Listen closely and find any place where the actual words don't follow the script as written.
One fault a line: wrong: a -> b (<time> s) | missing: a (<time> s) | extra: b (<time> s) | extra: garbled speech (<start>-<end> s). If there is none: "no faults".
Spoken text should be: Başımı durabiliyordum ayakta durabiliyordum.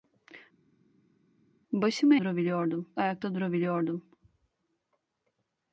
no faults